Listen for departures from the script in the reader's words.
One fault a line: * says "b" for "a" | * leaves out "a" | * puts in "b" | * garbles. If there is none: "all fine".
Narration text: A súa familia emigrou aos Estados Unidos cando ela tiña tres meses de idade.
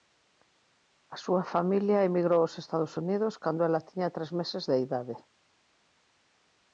all fine